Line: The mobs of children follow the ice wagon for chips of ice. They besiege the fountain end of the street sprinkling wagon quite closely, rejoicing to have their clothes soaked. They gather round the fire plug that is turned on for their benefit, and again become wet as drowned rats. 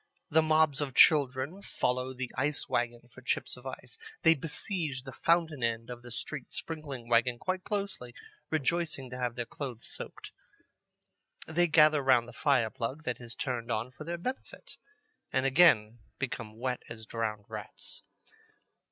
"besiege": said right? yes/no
yes